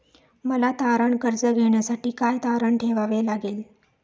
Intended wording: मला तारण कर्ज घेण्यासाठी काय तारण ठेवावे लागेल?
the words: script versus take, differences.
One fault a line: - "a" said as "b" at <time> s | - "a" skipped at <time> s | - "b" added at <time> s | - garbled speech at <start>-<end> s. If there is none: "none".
none